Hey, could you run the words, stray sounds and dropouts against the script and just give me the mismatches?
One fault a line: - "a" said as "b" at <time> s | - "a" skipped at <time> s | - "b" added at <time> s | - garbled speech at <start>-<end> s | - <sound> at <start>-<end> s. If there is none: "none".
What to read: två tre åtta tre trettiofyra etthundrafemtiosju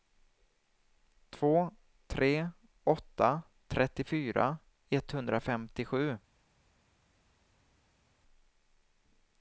- "tre" skipped at 3.4 s